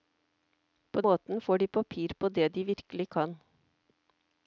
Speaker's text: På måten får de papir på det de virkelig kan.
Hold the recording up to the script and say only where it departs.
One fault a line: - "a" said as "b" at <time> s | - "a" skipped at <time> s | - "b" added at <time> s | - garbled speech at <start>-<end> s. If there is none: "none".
none